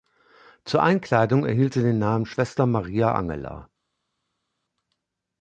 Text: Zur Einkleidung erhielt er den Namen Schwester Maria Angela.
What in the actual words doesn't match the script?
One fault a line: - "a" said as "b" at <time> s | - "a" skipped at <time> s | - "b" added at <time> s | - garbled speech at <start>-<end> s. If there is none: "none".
- "er" said as "sie" at 1.7 s